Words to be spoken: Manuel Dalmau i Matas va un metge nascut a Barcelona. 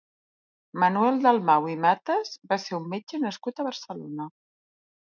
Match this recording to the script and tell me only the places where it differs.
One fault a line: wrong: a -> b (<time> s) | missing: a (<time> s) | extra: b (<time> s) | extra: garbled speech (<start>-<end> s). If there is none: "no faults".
extra: ser (2.7 s)